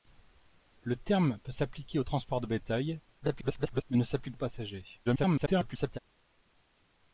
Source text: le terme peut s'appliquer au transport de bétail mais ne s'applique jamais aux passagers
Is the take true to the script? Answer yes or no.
no